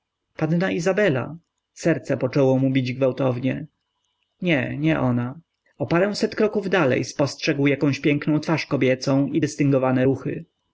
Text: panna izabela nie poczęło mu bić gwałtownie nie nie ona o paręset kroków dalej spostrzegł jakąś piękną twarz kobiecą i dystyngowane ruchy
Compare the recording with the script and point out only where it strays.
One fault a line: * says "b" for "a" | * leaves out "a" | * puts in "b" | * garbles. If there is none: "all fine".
* says "serce" for "nie"